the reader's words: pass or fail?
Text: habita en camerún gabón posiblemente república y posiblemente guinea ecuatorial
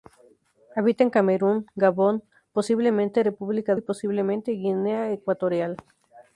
pass